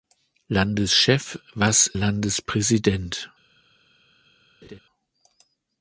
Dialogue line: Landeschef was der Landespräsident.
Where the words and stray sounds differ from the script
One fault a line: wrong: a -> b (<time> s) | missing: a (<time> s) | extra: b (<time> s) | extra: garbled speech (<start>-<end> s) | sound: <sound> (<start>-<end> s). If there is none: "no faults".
missing: der (1.9 s)
sound: laugh (4.6-4.8 s)